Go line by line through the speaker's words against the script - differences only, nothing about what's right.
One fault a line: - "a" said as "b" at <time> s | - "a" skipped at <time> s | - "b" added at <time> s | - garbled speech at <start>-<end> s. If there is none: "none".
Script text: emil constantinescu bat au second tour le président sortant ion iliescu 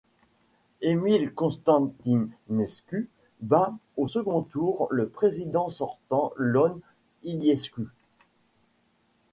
none